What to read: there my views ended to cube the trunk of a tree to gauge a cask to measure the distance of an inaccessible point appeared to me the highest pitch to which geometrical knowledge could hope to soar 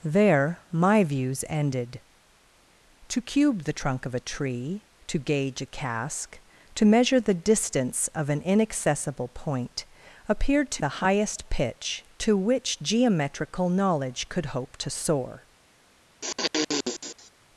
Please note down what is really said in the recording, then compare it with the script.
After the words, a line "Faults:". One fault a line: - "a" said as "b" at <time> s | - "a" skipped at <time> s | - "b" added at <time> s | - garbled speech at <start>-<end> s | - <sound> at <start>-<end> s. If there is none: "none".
there my views ended to cube the trunk of a tree to gauge a cask to measure the distance of an inaccessible point appeared to the highest pitch to which geometrical knowledge could hope to soar
Faults:
- "me" skipped at 10.8 s
- sniff at 16.2-17.3 s